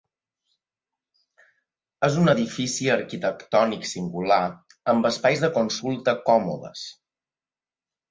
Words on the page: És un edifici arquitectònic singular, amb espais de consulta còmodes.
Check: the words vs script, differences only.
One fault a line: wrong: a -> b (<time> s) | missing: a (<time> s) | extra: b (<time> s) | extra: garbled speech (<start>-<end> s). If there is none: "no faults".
no faults